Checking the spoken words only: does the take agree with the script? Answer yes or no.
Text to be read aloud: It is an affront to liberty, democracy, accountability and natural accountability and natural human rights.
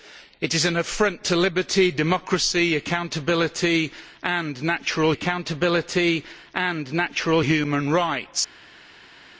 yes